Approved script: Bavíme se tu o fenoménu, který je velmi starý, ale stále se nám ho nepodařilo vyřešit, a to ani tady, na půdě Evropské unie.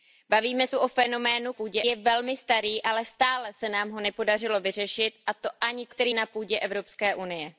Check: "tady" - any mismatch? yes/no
yes